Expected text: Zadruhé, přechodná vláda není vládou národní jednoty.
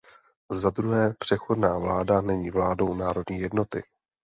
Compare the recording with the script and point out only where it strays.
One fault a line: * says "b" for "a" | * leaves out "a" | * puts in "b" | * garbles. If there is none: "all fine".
all fine